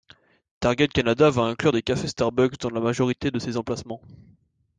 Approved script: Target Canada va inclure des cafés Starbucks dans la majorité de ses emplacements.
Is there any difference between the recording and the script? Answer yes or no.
no